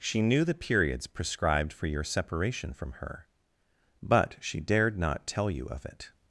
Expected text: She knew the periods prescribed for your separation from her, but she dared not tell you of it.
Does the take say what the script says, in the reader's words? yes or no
yes